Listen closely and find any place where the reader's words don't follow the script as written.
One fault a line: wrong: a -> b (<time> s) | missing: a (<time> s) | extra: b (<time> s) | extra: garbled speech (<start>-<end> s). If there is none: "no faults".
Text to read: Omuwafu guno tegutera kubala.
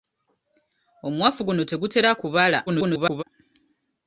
extra: garbled speech (2.7-3.2 s)